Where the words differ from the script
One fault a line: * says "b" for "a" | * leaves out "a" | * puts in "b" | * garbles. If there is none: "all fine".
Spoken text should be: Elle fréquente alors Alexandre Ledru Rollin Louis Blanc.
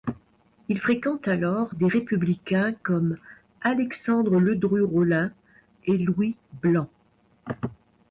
* says "Il" for "Elle"
* puts in "des républicains comme"
* puts in "et"